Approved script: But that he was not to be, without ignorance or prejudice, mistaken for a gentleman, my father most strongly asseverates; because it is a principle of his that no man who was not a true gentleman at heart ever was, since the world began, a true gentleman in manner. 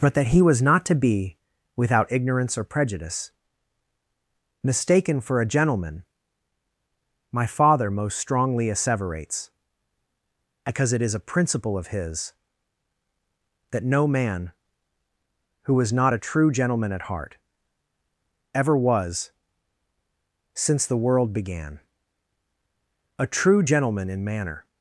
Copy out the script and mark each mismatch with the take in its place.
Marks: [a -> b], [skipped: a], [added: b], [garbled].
But that he was not to be, without ignorance or prejudice, mistaken for a gentleman, my father most strongly asseverates; because it is a principle of his that no man who was not a true gentleman at heart ever was, since the world began, a true gentleman in manner.